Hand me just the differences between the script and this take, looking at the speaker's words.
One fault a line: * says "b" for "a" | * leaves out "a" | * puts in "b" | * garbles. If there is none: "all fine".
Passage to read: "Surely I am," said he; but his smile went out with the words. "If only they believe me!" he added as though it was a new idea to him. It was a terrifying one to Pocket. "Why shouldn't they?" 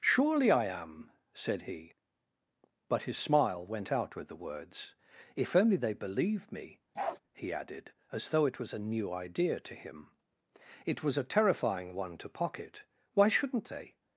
all fine